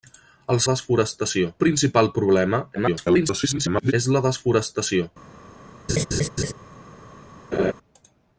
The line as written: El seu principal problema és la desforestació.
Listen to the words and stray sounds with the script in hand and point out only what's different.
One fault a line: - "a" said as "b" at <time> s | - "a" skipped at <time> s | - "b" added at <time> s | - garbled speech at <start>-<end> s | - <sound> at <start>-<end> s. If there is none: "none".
- "seu" said as "desforestació" at 0.7 s
- garbled speech at 2.7-3.9 s
- laugh at 5.9-6.5 s
- laugh at 7.5-7.7 s